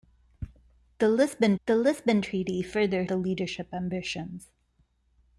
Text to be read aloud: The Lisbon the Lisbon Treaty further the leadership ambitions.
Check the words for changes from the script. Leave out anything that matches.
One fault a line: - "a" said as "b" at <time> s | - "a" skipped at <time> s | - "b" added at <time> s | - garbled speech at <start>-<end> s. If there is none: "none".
none